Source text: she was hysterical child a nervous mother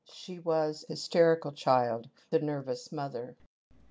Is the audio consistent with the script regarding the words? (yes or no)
yes